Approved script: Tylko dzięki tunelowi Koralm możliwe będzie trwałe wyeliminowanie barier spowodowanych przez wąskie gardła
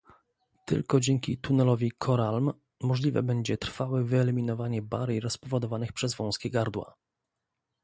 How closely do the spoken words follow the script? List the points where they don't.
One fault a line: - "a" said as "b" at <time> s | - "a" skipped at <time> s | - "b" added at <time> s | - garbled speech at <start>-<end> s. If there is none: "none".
none